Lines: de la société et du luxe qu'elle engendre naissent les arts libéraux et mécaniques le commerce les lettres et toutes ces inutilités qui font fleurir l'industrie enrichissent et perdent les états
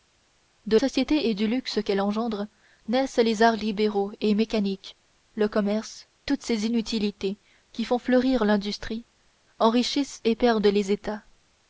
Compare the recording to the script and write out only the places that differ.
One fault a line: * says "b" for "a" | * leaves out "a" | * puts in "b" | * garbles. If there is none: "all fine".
* leaves out "la"
* leaves out "les lettres et"